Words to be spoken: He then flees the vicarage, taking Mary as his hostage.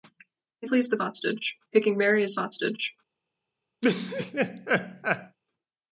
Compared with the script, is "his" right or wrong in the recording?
wrong